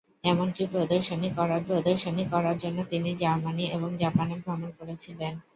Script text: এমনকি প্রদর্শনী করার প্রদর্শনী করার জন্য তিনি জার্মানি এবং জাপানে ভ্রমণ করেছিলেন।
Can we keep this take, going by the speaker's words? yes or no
yes